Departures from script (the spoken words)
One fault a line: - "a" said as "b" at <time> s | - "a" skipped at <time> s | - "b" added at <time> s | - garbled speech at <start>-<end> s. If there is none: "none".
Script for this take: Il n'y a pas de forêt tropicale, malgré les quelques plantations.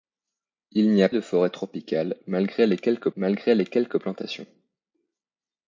- "pas" skipped at 1.1 s
- "malgré les quelques" added at 3.2 s